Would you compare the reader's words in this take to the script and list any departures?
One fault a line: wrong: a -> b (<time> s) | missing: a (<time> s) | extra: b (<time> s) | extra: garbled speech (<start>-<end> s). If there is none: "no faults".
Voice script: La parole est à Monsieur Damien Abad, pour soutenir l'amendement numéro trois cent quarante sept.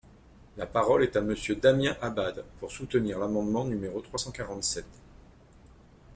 no faults